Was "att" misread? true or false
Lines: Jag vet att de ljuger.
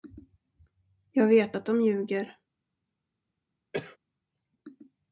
false